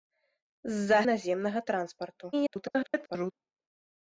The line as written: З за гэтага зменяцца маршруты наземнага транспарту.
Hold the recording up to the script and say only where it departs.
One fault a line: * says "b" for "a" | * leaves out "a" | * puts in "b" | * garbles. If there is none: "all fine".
* leaves out "гэтага зменяцца маршруты"
* garbles